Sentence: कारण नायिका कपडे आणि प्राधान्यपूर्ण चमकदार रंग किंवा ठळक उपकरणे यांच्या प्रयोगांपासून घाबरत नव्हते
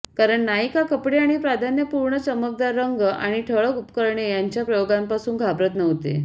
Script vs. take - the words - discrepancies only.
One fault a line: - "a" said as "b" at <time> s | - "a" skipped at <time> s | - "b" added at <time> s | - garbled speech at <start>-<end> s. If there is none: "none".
- "किंवा" said as "आणि" at 3.0 s